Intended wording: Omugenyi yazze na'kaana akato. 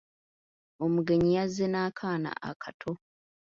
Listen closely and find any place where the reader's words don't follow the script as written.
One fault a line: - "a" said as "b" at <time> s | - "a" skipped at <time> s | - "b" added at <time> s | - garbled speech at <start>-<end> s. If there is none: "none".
none